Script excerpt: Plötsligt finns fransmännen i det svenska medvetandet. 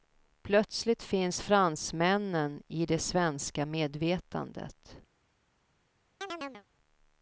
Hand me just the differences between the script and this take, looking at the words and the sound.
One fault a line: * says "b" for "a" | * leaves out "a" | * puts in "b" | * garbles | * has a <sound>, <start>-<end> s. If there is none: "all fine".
* has a chirp, 6.2-6.6 s